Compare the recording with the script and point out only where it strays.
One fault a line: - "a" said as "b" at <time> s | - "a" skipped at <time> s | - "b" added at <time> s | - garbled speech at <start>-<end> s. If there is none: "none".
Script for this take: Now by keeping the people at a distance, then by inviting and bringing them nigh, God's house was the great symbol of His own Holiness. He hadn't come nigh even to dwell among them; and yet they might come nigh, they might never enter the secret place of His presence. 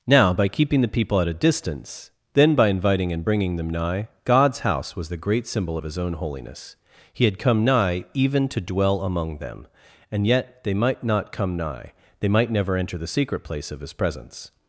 - "hadn't" said as "had" at 7.2 s
- "not" added at 11.0 s